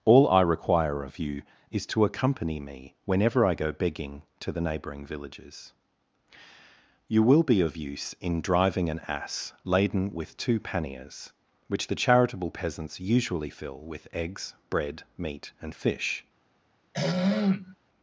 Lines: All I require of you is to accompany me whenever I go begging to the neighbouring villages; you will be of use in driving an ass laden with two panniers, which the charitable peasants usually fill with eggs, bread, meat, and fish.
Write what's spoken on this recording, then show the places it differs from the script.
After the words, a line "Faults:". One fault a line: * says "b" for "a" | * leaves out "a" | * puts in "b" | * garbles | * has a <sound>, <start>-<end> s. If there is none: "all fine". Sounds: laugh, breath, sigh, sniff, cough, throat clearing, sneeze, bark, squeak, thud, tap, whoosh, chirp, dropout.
All I require of you is to accompany me whenever I go begging to the neighbouring villages; you will be of use in driving an ass laden with two panniers, which the charitable peasants usually fill with eggs, bread, meat, and fish.
Faults:
* has a throat clearing, 16.9-17.8 s